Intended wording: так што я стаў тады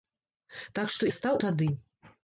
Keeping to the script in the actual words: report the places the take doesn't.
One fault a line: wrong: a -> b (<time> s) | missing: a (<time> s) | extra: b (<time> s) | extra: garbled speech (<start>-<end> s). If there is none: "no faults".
no faults